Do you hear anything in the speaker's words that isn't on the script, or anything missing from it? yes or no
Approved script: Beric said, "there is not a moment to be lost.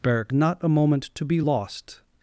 yes